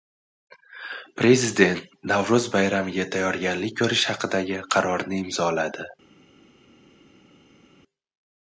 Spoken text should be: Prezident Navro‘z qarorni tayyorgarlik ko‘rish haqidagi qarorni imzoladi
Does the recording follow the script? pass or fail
fail